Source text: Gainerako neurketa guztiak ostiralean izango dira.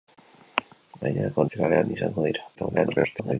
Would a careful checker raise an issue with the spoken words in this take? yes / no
yes